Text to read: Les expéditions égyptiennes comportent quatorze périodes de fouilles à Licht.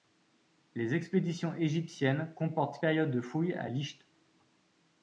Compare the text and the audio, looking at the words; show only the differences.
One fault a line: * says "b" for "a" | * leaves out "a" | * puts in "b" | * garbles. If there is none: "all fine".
* leaves out "quatorze"